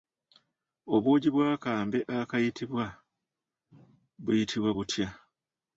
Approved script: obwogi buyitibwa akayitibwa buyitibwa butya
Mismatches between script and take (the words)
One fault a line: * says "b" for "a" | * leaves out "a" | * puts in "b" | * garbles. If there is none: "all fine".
* says "bw'akambe" for "buyitibwa"